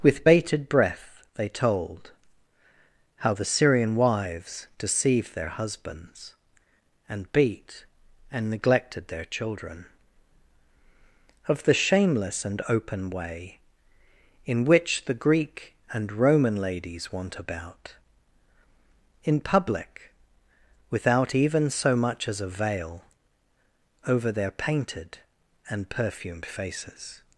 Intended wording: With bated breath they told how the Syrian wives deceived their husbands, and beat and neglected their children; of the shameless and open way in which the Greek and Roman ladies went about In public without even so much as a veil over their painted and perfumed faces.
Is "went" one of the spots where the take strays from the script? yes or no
yes